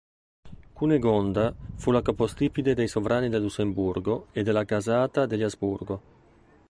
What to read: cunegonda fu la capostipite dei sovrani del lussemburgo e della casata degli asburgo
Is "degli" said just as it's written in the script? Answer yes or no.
yes